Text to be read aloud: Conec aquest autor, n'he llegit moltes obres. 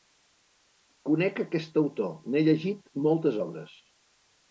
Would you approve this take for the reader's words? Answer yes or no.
yes